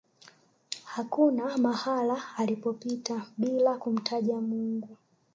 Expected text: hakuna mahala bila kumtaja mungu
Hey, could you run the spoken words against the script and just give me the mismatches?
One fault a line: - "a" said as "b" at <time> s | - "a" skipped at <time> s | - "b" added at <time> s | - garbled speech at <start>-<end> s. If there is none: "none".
- "alipopita" added at 2.4 s